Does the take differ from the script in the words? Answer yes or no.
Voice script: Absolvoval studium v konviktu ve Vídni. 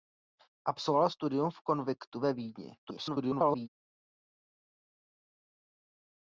yes